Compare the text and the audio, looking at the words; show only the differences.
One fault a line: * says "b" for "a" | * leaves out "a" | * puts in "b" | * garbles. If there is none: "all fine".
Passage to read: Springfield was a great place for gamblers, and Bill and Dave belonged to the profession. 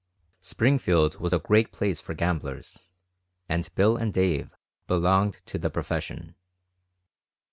all fine